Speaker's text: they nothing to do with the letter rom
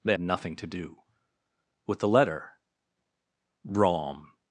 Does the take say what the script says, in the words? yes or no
yes